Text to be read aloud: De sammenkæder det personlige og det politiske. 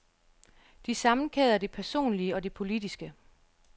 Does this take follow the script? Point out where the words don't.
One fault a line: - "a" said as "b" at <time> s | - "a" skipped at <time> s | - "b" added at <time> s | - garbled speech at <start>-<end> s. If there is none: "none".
none